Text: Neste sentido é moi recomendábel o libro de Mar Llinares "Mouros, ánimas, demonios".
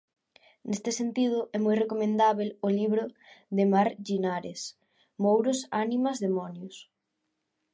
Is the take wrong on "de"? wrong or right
right